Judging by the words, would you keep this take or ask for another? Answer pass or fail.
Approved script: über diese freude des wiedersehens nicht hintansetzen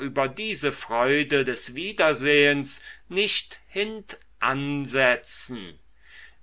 pass